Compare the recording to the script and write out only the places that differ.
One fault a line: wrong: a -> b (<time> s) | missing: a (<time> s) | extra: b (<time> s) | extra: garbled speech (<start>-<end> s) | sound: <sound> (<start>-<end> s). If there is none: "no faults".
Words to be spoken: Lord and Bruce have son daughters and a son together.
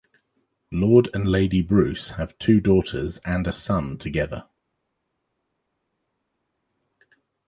extra: Lady (1.3 s)
wrong: son -> two (2.4 s)